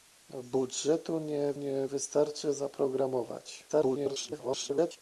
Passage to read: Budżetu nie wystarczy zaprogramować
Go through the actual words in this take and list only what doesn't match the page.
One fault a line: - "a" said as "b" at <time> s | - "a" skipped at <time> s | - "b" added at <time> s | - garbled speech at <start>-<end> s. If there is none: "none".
- "nie" added at 1.5 s
- garbled speech at 3.7-5.0 s